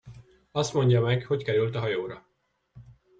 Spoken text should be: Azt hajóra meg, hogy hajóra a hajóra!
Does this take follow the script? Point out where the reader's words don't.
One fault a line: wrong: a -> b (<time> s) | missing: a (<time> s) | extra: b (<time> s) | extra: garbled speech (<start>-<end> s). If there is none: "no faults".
wrong: hajóra -> mondja (0.7 s)
wrong: hajóra -> került (1.4 s)